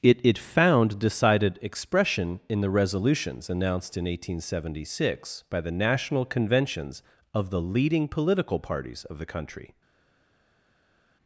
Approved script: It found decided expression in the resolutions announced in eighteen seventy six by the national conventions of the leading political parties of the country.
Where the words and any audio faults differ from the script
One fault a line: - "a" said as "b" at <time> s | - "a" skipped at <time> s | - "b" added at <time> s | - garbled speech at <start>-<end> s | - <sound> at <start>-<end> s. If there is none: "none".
- "it" added at 0.2 s